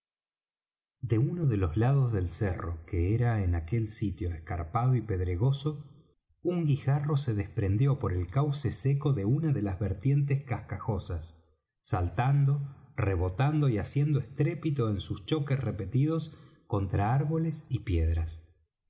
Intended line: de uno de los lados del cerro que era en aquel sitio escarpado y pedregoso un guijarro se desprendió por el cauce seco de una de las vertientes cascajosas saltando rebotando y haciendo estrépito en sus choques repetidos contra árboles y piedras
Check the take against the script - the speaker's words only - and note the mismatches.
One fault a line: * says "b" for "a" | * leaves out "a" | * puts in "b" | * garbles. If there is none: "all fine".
all fine